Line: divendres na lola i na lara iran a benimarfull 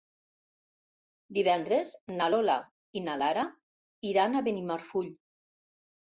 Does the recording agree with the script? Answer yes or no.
yes